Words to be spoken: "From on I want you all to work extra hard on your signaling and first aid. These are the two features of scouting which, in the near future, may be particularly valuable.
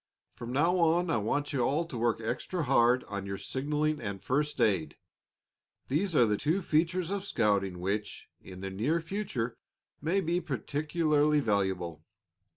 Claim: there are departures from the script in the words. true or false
true